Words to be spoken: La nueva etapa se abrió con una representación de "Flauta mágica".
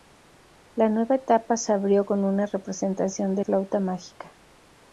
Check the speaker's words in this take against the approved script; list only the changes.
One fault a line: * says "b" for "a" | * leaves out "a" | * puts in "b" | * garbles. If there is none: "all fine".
all fine